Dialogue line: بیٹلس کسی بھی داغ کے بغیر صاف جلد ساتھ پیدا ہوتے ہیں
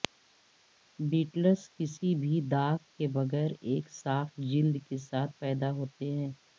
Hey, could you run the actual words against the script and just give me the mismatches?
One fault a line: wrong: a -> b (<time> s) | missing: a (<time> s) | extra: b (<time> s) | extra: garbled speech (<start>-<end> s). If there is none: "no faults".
extra: ایک (3.6 s)
extra: کے (4.9 s)